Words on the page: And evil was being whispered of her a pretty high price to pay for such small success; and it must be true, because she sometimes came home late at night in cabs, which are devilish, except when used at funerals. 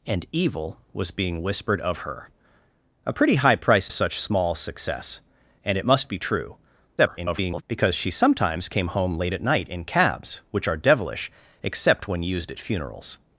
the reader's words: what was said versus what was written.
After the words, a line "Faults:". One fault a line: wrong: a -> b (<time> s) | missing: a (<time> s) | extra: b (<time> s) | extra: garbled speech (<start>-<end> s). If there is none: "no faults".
And evil was being whispered of her a pretty high price such small success; and it must be true, [garbled] because she sometimes came home late at night in cabs, which are devilish, except when used at funerals.
Faults:
missing: to pay for (3.9 s)
extra: garbled speech (7.0-7.6 s)